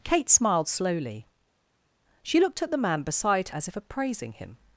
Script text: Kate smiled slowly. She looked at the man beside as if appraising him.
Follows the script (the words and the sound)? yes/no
yes